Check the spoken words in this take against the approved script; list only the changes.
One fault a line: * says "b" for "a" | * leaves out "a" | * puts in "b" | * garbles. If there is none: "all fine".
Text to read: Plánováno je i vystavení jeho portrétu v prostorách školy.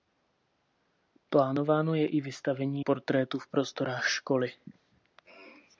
* leaves out "jeho"